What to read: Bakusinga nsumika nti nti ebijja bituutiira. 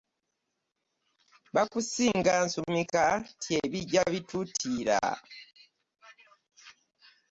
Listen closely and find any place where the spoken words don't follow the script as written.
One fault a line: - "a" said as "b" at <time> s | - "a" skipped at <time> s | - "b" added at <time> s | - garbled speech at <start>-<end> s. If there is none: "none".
- "nti" skipped at 3.5 s